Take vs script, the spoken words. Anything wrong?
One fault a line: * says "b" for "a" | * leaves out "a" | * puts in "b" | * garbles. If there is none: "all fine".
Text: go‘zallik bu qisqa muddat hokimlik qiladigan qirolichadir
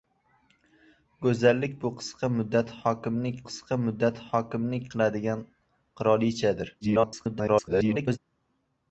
* puts in "qisqa muddat hokimlik"
* garbles